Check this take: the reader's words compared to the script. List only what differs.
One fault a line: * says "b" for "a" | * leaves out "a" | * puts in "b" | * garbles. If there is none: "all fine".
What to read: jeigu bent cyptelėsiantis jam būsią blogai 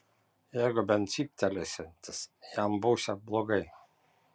all fine